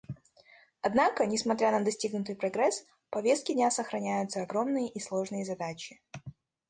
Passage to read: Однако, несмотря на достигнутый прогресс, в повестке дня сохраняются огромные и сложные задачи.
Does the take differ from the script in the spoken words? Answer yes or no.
no